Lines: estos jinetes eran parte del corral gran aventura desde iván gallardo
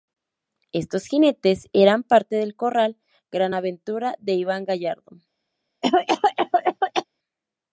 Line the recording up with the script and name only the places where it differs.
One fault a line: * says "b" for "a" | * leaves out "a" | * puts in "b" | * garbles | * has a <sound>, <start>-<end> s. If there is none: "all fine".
* says "de" for "desde"
* has a cough, 5.8-7.1 s